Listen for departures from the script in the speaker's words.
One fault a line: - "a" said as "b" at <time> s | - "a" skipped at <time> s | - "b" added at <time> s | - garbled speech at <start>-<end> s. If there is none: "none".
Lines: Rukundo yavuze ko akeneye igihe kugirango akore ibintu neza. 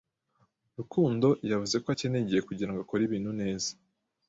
none